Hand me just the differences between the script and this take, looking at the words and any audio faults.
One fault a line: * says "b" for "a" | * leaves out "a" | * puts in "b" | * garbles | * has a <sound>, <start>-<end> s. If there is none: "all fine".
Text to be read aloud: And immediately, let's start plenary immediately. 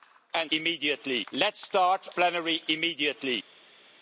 all fine